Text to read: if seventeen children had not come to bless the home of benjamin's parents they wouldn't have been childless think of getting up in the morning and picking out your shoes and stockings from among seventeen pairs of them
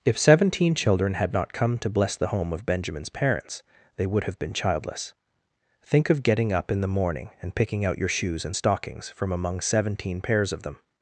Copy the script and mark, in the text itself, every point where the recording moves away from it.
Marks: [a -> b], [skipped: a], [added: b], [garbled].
if seventeen children had not come to bless the home of benjamin's parents they [wouldn't -> would] have been childless think of getting up in the morning and picking out your shoes and stockings from among seventeen pairs of them